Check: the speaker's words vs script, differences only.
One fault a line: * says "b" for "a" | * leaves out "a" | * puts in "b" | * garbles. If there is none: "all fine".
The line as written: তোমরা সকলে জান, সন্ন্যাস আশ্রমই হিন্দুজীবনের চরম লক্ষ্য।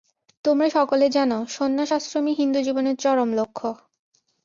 all fine